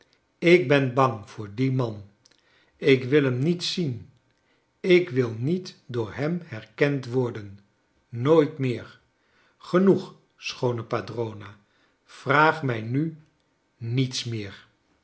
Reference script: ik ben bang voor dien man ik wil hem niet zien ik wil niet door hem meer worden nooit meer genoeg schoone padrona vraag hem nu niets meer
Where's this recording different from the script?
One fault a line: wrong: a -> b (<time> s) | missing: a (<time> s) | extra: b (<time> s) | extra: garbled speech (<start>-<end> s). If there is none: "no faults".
wrong: meer -> herkend (6.5 s)
wrong: hem -> mij (12.6 s)